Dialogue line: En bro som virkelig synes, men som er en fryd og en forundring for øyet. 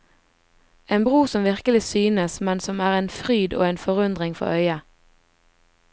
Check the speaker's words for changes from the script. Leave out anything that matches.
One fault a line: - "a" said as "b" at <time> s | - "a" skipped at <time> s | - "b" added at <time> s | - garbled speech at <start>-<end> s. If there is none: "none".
none